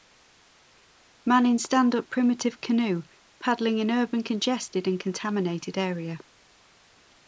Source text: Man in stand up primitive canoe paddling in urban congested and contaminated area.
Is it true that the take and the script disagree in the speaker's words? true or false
false